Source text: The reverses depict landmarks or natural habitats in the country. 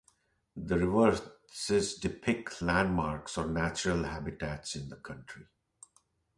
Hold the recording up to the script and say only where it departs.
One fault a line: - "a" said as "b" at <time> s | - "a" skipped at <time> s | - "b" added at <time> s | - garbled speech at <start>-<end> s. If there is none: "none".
none